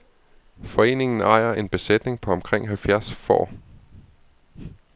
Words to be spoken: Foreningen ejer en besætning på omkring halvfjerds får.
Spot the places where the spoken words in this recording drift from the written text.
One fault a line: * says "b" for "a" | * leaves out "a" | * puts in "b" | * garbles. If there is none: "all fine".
all fine